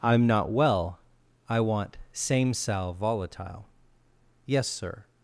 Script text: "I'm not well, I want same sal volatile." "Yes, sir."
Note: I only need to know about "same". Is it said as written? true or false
true